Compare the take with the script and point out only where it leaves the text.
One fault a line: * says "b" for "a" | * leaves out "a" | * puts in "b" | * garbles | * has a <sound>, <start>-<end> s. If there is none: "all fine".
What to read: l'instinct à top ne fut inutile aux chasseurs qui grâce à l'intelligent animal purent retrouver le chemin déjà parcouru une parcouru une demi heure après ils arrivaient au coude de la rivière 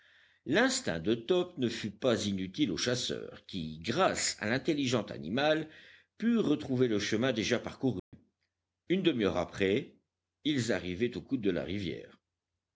* says "de" for "à"
* puts in "pas"
* has a dropout, 8.0-8.1 s
* leaves out "parcouru une"